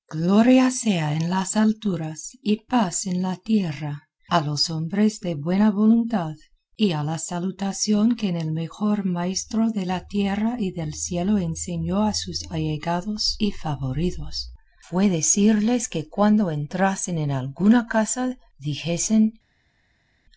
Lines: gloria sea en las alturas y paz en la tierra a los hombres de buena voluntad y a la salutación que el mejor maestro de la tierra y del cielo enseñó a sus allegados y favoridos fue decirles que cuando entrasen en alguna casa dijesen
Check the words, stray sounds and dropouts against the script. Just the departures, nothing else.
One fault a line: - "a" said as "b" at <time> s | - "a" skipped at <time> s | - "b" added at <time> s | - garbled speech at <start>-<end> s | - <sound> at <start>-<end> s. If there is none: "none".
none